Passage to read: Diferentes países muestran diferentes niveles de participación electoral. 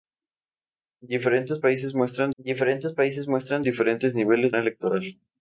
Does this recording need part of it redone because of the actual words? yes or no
yes